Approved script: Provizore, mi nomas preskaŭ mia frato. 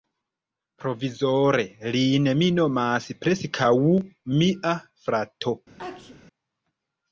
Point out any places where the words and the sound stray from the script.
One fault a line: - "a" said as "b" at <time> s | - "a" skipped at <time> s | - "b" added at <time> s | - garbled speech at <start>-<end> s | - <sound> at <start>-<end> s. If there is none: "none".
- "lin" added at 2.0 s
- sneeze at 5.8-6.2 s